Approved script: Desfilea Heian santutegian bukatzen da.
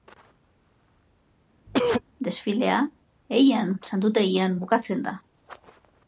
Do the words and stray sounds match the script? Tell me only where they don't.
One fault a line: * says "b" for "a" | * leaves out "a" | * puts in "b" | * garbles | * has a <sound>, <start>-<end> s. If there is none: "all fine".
* has a cough, 1.7-2.0 s